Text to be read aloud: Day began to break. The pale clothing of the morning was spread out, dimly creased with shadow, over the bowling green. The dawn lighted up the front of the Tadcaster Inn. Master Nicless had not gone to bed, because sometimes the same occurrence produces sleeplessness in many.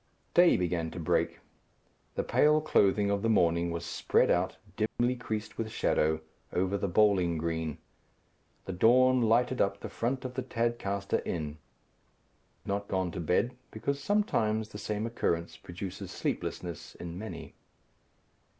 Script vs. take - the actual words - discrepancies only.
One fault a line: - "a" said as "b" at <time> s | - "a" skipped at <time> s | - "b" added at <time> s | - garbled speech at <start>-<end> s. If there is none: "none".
- "Master Nicless had" skipped at 11.6 s